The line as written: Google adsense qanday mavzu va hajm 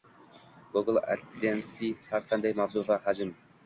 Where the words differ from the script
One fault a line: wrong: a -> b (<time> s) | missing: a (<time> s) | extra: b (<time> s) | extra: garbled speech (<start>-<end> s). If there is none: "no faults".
extra: har (2.1 s)